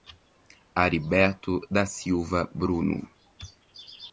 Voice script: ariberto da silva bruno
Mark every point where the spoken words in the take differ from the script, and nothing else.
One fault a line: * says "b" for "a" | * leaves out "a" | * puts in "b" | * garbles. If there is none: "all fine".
all fine